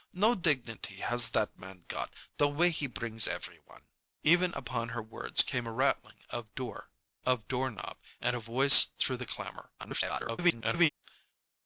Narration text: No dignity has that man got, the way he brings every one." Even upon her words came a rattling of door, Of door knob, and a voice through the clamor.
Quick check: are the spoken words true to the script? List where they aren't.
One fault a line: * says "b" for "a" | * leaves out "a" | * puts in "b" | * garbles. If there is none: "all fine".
* garbles